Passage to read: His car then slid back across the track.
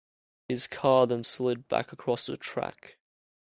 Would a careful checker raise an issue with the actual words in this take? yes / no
no